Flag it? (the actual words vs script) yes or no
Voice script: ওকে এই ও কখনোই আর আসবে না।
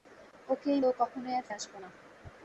no